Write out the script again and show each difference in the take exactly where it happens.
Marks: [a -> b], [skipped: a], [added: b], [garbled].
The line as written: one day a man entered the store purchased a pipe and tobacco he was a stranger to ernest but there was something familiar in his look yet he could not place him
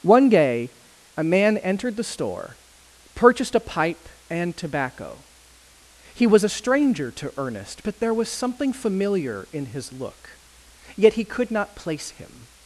one day a man entered the store purchased a pipe and tobacco he was a stranger to ernest but there was something familiar in his look yet he could not place him